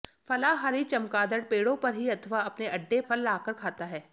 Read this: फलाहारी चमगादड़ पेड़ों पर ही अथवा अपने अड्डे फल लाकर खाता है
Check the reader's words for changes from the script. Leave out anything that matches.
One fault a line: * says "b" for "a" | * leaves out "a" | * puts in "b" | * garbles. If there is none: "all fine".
all fine